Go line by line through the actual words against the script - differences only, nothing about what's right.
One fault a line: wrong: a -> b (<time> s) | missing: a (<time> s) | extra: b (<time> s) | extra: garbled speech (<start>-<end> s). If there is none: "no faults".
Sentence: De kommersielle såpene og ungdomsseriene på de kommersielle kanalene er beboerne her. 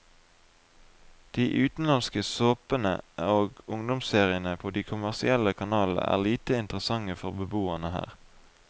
wrong: kommersielle -> utenlandske (1.6 s)
extra: lite interessante for (6.3 s)